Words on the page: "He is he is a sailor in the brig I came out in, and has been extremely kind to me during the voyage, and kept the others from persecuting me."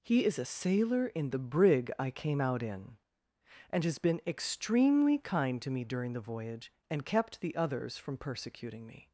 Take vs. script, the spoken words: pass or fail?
fail